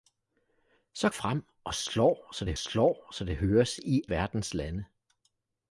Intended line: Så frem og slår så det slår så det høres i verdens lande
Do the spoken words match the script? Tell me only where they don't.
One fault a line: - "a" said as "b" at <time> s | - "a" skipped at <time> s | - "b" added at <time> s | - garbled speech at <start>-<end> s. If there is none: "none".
none